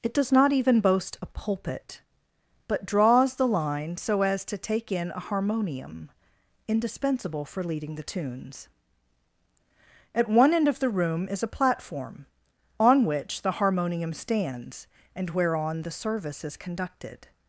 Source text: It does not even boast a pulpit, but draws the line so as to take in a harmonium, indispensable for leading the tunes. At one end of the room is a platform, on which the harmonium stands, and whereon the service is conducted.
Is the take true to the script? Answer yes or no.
yes